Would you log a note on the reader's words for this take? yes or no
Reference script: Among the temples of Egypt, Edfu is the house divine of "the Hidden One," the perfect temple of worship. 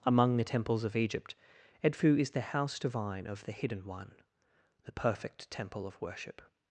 no